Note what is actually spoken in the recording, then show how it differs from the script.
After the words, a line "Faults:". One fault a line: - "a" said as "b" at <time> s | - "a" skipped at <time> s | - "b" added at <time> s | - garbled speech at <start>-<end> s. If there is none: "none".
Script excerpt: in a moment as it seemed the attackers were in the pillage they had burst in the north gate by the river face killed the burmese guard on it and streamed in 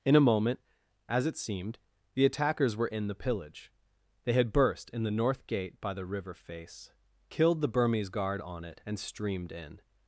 in a moment as it seemed the attackers were in the pillage they had burst in the north gate by the river face killed the burmese guard on it and streamed in
Faults:
none